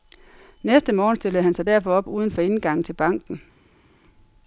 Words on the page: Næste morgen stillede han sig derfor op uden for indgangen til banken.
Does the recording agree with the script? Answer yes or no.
yes